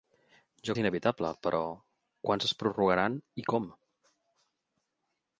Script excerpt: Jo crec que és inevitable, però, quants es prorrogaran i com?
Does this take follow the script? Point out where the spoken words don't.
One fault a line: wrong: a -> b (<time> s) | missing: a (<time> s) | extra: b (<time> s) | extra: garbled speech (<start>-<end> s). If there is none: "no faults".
missing: crec que (0.8 s)